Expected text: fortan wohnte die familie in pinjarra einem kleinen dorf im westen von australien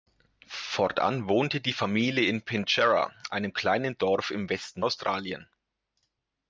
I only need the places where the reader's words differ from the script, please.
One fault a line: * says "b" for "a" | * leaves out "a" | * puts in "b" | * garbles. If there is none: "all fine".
* leaves out "von"